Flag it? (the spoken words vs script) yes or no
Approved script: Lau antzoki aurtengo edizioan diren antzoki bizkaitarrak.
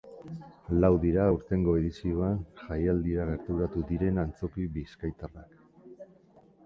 yes